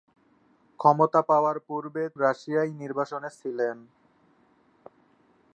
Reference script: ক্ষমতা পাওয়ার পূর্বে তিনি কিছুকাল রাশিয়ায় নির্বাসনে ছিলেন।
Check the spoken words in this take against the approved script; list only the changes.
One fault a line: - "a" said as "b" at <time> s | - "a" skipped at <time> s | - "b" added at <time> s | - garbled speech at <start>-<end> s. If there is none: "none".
- "তিনি কিছুকাল" skipped at 2.0 s